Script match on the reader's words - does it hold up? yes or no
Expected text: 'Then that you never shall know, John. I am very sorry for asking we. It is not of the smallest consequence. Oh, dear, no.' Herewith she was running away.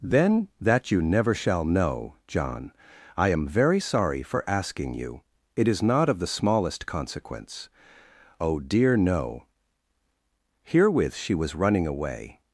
no